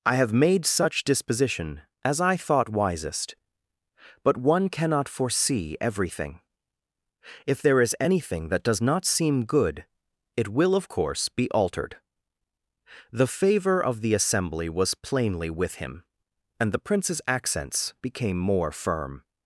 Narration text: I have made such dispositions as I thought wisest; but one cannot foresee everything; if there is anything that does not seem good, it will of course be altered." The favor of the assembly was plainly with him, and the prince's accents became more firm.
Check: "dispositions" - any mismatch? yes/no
yes